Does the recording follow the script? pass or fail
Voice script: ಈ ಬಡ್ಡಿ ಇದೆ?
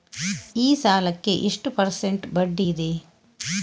fail